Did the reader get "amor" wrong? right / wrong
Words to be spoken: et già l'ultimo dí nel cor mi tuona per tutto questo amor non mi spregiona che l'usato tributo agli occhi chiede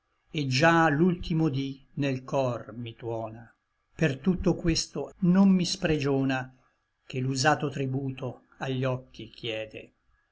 wrong